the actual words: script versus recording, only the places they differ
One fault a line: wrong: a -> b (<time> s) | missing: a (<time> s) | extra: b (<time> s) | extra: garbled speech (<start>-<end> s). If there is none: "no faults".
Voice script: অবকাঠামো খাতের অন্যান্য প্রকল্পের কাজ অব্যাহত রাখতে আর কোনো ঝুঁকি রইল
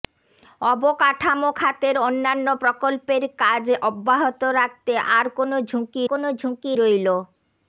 extra: কোনো ঝুঁকি (6.1 s)